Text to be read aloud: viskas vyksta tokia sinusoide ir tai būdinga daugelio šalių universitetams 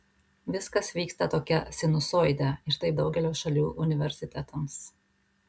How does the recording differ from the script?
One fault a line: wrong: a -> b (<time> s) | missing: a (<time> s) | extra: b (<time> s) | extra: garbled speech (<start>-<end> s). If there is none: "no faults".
missing: būdinga (2.9 s)